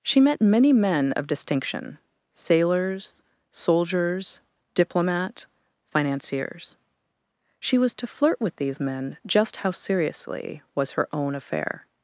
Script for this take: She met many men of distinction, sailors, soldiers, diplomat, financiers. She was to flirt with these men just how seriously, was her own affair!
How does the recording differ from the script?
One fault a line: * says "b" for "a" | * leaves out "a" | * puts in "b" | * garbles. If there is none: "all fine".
all fine